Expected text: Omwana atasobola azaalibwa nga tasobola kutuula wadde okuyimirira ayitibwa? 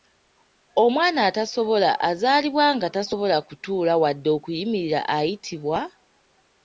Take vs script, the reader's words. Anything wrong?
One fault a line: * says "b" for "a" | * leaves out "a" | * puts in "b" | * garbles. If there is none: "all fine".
all fine